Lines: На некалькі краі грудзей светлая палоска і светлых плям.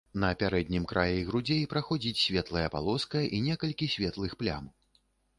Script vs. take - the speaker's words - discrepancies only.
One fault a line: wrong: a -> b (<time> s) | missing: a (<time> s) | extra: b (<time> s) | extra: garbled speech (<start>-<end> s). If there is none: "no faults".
wrong: некалькі -> пярэднім (0.4 s)
extra: праходзіць (1.7 s)
extra: некалькі (3.5 s)